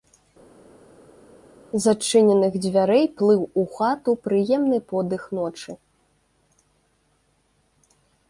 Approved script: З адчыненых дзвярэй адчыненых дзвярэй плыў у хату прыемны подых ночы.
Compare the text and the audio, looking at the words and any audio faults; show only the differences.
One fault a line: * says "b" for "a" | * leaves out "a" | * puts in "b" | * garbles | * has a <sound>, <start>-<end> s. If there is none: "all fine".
* leaves out "адчыненых дзвярэй"